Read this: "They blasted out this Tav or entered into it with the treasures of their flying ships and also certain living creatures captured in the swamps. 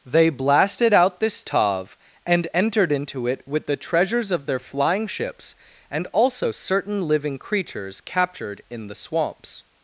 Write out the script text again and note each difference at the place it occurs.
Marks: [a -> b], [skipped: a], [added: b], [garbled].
"They blasted out this Tav [or -> and] entered into it with the treasures of their flying ships and also certain living creatures captured in the swamps.